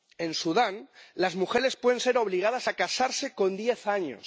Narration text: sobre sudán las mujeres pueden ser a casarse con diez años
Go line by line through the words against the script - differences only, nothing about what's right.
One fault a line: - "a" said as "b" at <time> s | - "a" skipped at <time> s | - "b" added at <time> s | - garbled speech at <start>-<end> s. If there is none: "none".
- "sobre" said as "en" at 0.2 s
- "obligadas" added at 2.2 s